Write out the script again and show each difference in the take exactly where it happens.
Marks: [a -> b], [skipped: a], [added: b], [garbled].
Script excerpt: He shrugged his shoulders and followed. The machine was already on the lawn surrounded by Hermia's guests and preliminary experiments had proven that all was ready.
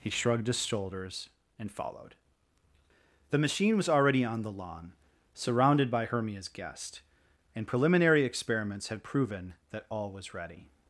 He shrugged his shoulders and followed. The machine was already on the lawn surrounded by Hermia's [guests -> guest] and preliminary experiments had proven that all was ready.